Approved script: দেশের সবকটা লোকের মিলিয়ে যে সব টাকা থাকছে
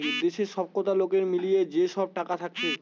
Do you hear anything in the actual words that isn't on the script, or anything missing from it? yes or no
no